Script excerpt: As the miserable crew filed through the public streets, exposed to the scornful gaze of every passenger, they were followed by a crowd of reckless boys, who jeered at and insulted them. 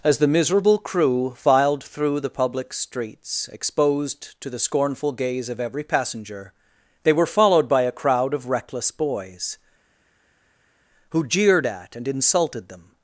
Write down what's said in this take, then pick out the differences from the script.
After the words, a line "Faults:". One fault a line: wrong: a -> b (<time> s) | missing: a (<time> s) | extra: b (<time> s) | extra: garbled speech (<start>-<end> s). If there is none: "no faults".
As the miserable crew filed through the public streets, exposed to the scornful gaze of every passenger, they were followed by a crowd of reckless boys, who jeered at and insulted them.
Faults:
no faults